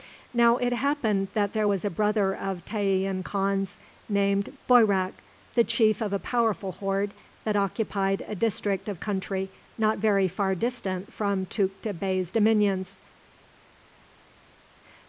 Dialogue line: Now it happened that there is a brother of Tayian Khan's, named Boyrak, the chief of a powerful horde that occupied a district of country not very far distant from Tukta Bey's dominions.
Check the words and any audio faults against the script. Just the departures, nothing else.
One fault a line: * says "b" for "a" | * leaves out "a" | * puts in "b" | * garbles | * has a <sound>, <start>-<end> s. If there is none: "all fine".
* says "was" for "is"